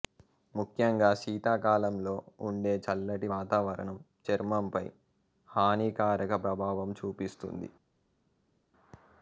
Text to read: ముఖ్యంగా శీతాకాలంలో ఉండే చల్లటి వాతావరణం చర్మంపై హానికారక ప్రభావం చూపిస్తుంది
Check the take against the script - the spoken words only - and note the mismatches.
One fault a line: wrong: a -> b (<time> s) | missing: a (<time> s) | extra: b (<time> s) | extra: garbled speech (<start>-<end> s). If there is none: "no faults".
no faults